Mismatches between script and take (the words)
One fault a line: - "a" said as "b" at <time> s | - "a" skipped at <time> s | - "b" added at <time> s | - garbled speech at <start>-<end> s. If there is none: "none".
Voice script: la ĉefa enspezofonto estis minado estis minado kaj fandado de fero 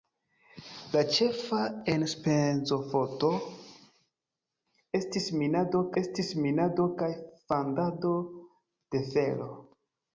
none